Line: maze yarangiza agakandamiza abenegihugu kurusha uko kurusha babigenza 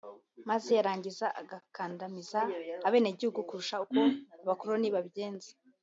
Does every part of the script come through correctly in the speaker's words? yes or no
no